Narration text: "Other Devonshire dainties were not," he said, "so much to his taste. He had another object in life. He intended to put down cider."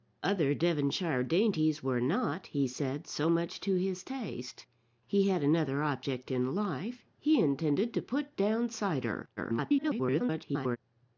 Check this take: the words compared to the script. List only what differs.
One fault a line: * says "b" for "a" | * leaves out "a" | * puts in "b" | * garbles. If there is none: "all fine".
* garbles